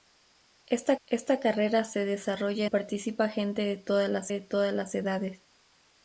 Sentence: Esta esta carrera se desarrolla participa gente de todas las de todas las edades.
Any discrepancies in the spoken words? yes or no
no